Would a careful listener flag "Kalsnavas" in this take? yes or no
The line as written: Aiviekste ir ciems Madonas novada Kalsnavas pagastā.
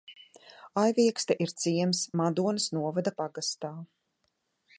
yes